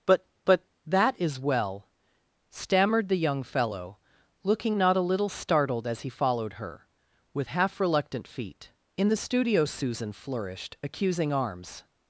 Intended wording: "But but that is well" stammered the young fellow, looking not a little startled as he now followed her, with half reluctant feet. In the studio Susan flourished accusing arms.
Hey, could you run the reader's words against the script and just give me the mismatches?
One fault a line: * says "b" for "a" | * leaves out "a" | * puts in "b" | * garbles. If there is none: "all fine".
* leaves out "now"